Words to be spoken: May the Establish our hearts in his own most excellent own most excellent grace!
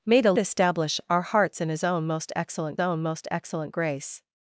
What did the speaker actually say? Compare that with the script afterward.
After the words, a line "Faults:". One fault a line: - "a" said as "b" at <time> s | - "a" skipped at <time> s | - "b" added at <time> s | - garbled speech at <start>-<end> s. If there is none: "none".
May the Establish our hearts in his own most excellent own most excellent grace!
Faults:
none